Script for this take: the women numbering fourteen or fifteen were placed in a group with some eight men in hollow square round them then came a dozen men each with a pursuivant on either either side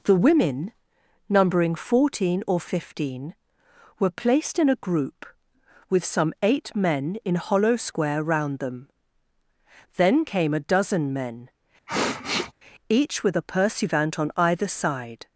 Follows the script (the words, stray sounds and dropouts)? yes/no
no